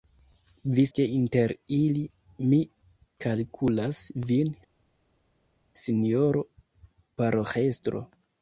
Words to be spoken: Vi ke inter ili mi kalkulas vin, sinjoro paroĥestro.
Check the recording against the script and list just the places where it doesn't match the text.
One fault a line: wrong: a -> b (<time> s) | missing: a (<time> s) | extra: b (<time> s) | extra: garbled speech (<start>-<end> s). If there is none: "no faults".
no faults